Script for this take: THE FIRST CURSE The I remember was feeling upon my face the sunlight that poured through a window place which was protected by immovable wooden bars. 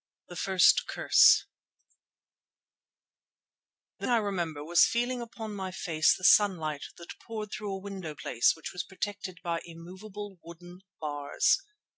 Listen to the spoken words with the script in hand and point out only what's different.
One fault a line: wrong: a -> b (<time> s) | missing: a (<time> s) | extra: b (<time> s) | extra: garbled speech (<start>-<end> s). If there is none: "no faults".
no faults